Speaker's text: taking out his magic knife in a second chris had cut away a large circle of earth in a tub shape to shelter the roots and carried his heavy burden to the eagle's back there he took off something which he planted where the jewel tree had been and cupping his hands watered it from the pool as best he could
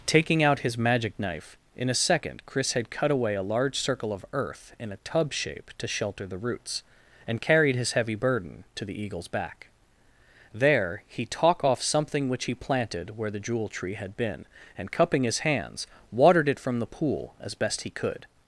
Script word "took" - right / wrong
wrong